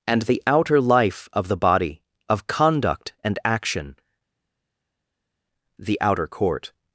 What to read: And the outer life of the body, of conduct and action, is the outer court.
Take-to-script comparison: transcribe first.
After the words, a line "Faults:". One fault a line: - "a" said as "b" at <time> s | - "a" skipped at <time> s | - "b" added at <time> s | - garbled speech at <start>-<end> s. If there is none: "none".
And the outer life of the body, of conduct and action, the outer court.
Faults:
- "is" skipped at 4.0 s